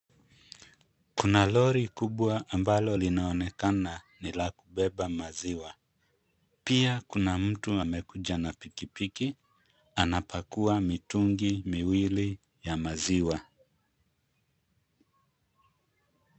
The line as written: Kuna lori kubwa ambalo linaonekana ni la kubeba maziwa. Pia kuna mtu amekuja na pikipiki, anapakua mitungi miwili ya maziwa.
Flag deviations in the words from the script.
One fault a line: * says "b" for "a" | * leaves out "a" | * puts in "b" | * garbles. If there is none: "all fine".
all fine